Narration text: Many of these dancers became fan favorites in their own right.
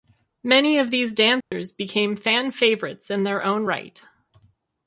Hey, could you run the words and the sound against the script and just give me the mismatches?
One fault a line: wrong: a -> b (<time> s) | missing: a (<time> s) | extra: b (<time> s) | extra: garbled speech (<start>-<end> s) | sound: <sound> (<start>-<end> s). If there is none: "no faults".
sound: dropout (1.4-1.5 s)